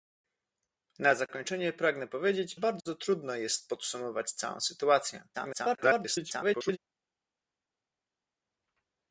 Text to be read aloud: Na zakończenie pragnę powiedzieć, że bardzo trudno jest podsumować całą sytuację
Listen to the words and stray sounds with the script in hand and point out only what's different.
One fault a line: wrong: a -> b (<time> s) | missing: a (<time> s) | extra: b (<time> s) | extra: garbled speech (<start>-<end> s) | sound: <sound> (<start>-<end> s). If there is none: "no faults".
missing: że (2.5 s)
extra: garbled speech (5.3-6.8 s)